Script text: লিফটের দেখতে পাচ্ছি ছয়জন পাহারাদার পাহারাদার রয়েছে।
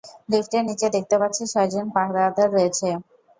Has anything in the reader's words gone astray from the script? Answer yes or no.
yes